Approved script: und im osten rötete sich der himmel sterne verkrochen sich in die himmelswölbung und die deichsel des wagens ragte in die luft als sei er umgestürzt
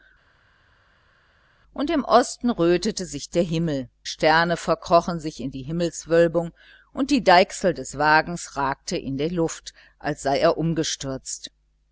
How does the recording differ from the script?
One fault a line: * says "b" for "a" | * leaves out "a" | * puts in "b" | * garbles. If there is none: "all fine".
all fine